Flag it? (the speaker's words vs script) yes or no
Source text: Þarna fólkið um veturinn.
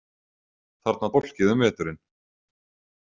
no